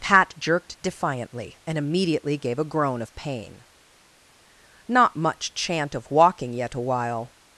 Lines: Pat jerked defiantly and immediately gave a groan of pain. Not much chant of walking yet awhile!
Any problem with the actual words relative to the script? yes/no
no